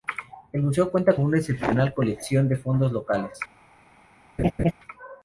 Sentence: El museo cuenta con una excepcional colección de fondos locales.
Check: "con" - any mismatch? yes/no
yes